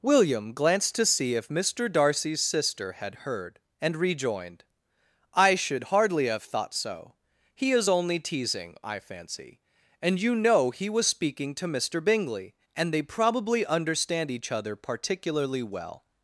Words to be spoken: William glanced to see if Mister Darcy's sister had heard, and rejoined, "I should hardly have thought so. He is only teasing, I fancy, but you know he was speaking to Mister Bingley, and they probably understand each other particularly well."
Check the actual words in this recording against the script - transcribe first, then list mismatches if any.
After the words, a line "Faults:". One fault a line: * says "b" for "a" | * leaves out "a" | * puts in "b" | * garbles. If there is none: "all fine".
William glanced to see if Mister Darcy's sister had heard, and rejoined, "I should hardly have thought so. He is only teasing, I fancy, and you know he was speaking to Mister Bingley, and they probably understand each other particularly well."
Faults:
* says "and" for "but"